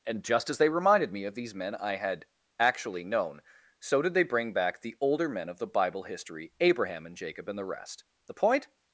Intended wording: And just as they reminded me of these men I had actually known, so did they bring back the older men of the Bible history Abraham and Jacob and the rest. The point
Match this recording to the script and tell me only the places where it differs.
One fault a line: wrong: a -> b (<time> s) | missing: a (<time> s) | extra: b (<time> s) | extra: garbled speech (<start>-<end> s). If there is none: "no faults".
no faults